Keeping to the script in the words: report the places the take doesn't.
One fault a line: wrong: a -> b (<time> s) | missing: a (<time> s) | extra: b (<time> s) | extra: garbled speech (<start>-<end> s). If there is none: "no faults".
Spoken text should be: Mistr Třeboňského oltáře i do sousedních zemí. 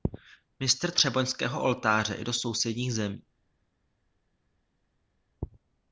no faults